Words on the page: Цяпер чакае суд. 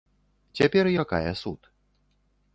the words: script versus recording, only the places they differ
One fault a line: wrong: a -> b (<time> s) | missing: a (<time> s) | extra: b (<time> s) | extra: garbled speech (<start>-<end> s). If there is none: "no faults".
no faults